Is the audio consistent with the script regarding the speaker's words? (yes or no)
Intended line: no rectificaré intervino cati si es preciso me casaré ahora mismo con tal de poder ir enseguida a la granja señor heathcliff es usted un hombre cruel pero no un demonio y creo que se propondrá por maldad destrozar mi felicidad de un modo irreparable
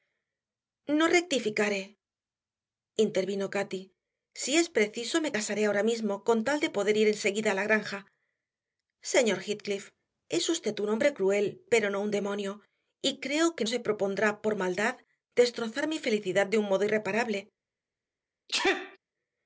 yes